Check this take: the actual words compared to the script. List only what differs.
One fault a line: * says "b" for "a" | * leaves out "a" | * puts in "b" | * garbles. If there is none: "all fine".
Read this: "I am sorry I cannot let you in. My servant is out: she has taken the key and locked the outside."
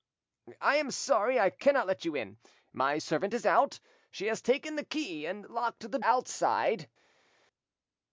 all fine